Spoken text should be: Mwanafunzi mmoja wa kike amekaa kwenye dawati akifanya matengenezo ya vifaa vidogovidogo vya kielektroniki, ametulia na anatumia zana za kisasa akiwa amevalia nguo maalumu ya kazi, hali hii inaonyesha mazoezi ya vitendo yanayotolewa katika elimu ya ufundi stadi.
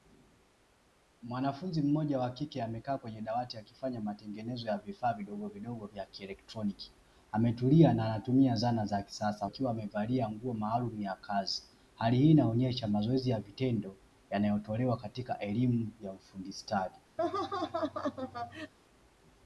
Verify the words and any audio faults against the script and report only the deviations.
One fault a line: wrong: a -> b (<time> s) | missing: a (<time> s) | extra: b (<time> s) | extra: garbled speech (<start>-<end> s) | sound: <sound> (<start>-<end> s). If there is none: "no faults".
sound: laugh (17.2-18.7 s)